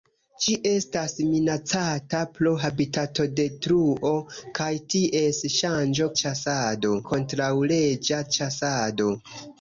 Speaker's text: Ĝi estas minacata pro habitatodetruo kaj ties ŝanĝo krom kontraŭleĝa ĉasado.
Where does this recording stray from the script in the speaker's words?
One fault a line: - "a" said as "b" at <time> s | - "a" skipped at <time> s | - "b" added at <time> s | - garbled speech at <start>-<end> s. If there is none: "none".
- "krom" said as "ĉasado" at 6.2 s